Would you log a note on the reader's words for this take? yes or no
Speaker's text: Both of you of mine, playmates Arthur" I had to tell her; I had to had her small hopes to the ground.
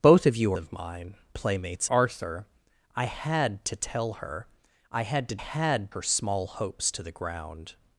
no